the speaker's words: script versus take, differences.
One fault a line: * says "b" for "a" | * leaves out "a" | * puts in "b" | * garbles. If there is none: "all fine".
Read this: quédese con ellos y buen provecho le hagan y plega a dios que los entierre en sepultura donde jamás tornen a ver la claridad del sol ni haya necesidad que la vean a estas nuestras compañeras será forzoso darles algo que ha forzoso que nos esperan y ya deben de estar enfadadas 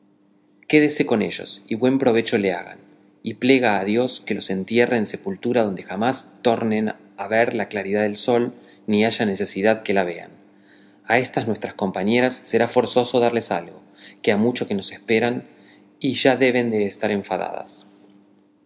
* says "mucho" for "forzoso"